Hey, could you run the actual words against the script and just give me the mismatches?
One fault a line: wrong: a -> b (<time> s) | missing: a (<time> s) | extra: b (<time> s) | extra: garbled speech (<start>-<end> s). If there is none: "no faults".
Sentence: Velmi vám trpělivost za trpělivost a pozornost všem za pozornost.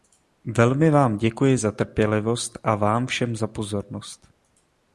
wrong: trpělivost -> děkuji (1.2 s)
wrong: pozornost -> vám (2.7 s)